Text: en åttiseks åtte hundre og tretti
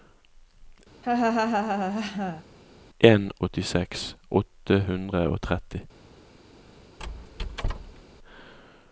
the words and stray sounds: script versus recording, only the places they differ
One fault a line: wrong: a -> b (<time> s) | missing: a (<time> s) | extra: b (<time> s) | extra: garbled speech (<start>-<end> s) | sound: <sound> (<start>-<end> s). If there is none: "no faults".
sound: laugh (1.0-2.4 s)
sound: squeak (7.0-8.0 s)